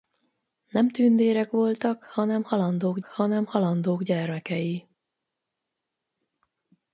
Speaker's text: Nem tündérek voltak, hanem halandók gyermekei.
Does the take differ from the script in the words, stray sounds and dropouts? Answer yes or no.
yes